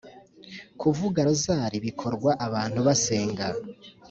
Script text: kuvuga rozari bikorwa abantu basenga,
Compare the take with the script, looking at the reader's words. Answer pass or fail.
pass